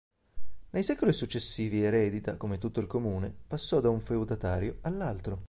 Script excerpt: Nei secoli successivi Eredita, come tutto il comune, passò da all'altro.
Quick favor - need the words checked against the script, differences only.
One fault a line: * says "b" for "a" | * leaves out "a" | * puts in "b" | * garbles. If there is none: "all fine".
* puts in "un feudatario"